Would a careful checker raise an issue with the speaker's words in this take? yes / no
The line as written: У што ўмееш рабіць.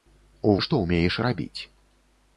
no